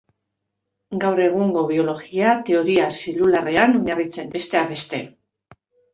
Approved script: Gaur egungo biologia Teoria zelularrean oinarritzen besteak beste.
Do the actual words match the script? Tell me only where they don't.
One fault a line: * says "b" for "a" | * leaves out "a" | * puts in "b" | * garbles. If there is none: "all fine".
all fine